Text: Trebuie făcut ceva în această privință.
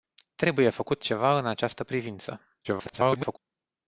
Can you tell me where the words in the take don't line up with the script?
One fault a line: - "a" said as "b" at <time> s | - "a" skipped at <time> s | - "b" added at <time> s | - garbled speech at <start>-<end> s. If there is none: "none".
- garbled speech at 2.6-3.4 s